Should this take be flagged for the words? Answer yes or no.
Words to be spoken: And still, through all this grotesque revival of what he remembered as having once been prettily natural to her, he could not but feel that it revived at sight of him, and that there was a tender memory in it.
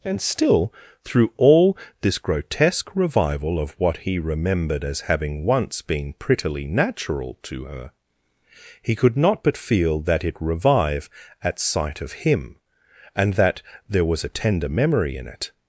yes